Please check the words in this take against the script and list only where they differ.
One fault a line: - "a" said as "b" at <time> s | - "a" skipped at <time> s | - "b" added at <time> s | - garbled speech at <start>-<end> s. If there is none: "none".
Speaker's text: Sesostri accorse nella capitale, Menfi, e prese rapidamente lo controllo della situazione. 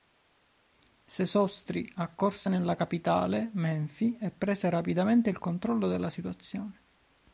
- "lo" said as "il" at 5.3 s